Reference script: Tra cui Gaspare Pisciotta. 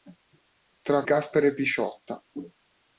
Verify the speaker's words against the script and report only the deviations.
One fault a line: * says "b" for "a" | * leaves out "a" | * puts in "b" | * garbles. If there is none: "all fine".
* leaves out "cui"